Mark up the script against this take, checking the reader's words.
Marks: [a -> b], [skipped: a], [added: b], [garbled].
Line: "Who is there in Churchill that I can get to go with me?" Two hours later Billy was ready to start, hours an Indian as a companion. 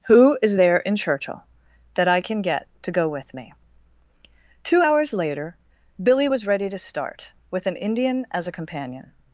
"Who is there in Churchill that I can get to go with me?" Two hours later Billy was ready to start, [hours -> with] an Indian as a companion.